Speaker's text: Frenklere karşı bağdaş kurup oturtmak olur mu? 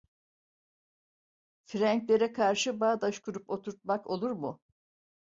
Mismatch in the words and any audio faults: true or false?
false